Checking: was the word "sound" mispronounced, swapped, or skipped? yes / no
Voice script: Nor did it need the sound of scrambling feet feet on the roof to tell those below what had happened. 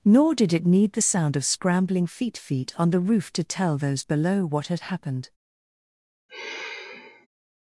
no